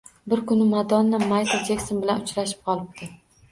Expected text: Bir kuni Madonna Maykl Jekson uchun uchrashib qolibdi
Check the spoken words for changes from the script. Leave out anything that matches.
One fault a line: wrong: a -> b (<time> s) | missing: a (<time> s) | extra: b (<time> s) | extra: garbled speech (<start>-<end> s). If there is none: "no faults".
wrong: uchun -> bilan (2.1 s)